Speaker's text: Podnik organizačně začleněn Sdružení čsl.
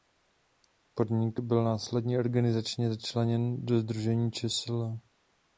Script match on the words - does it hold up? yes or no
no